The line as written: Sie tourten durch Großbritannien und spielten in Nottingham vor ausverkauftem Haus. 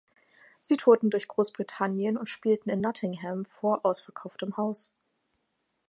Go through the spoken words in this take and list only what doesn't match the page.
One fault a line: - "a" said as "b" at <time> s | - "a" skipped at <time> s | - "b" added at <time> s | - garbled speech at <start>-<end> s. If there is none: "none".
none